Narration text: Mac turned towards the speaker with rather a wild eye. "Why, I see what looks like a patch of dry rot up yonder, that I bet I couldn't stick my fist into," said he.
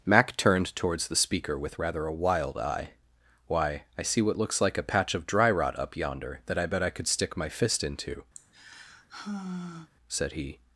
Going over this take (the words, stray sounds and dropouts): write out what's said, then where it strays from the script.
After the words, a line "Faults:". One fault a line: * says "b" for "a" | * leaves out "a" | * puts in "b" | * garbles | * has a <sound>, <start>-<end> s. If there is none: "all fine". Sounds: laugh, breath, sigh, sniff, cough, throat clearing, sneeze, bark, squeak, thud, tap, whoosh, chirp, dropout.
Mac turned towards the speaker with rather a wild eye. "Why, I see what looks like a patch of dry rot up yonder, that I bet I could stick my fist into," said he.
Faults:
* says "could" for "couldn't"
* has a sigh, 8.3-9.9 s